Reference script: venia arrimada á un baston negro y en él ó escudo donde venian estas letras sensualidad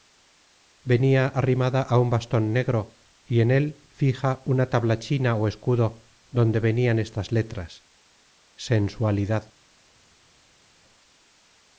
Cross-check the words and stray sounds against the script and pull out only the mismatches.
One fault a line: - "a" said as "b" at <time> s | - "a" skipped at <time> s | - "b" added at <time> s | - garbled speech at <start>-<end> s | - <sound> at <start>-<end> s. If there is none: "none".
- "fija una tablachina" added at 4.0 s